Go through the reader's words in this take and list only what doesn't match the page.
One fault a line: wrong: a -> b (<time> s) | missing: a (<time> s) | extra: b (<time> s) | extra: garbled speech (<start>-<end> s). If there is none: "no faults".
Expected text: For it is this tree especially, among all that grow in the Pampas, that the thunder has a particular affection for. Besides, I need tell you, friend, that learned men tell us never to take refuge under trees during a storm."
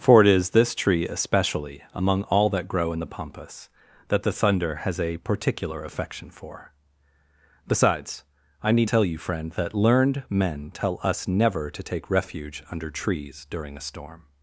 no faults